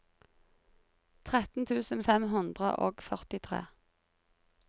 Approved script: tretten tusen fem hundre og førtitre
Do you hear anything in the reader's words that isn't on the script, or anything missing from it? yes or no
no